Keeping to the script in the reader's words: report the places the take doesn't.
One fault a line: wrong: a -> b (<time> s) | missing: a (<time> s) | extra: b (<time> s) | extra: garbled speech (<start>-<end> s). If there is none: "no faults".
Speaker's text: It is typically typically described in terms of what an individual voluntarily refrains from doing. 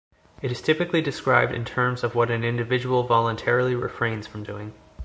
missing: typically (1.0 s)